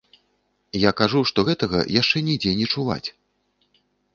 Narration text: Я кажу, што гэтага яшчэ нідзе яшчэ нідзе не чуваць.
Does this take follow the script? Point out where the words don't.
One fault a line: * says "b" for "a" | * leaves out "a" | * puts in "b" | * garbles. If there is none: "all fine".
* leaves out "яшчэ нідзе"